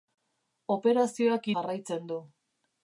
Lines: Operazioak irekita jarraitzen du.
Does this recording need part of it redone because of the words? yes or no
yes